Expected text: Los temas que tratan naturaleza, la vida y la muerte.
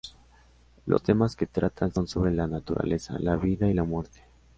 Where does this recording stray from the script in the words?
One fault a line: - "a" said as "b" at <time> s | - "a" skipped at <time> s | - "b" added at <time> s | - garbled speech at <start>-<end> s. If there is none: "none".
- "son sobre la" added at 1.9 s